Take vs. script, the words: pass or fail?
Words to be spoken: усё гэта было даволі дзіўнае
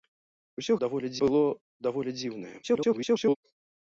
fail